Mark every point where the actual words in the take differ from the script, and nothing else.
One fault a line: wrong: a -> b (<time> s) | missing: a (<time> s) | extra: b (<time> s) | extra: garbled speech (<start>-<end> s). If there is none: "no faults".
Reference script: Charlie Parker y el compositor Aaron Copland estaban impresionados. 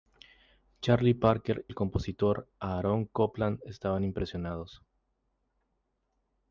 missing: y (1.7 s)